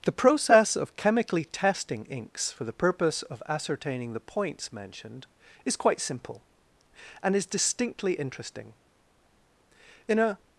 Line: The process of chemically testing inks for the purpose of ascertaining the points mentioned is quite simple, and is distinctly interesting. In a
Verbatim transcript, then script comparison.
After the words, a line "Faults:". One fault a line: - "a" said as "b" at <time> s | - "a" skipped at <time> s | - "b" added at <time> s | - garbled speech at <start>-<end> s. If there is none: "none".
The process of chemically testing inks for the purpose of ascertaining the points mentioned is quite simple, and is distinctly interesting. In a
Faults:
none